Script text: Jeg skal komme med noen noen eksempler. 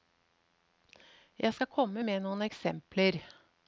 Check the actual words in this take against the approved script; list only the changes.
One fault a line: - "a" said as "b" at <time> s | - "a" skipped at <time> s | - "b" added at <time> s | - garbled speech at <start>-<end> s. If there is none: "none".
- "noen" skipped at 2.4 s